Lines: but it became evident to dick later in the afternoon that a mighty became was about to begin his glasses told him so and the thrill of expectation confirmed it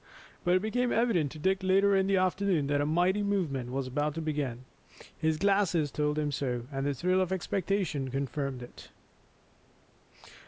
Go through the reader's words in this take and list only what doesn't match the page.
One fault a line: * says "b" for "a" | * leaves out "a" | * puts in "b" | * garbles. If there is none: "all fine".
* says "movement" for "became"